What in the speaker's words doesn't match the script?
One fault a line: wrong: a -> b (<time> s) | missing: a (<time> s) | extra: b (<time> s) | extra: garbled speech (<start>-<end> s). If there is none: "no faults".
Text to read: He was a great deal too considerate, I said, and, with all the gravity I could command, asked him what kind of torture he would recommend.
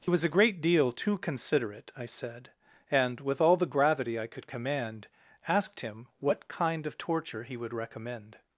no faults